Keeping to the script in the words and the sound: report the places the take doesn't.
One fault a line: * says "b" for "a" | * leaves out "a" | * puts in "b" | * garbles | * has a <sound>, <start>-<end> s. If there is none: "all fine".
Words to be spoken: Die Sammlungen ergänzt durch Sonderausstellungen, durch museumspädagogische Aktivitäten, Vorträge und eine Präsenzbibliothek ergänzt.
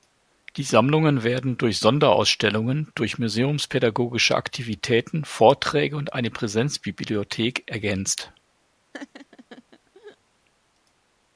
* says "werden" for "ergänzt"
* has a laugh, 8.9-10.2 s